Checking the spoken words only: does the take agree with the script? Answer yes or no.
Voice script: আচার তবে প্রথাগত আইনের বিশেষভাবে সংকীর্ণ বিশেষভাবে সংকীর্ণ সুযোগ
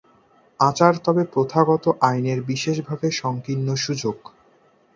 no